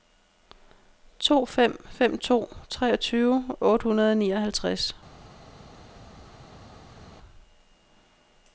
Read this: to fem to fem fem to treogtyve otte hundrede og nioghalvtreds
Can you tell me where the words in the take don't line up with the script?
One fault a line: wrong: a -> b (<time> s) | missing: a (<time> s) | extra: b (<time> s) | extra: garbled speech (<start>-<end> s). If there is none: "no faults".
missing: to fem (1.9 s)